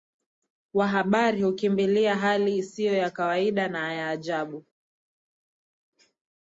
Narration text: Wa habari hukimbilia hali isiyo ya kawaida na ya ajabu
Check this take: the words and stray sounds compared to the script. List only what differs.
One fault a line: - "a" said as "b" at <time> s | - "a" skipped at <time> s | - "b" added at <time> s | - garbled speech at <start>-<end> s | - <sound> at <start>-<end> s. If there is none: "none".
none